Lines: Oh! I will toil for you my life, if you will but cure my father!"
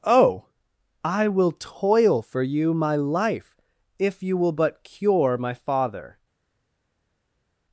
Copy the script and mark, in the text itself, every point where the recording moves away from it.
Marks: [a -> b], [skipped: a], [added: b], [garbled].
Oh! I will toil for you my life, if you will but cure my father!"